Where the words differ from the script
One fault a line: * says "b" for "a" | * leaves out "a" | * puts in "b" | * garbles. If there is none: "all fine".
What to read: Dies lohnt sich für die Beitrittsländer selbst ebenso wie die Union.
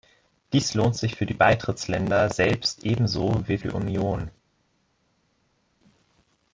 all fine